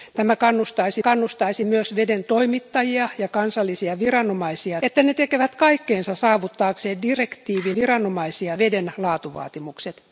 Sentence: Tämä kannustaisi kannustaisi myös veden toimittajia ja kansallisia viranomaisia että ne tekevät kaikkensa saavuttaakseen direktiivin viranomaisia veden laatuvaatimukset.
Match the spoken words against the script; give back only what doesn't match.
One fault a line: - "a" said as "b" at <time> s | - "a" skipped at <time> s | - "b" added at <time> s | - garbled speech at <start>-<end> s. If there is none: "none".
none